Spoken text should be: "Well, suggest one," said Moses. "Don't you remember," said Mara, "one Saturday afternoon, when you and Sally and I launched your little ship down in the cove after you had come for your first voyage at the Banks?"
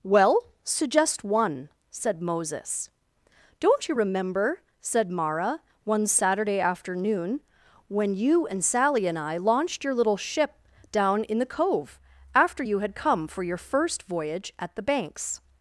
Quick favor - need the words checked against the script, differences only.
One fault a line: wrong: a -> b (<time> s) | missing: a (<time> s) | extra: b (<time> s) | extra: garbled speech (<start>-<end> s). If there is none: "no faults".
no faults